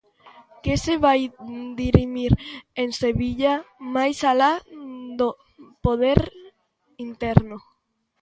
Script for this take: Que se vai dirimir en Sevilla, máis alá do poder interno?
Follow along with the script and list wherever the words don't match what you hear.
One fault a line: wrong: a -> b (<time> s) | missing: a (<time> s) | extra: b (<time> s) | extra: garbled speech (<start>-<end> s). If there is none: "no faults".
no faults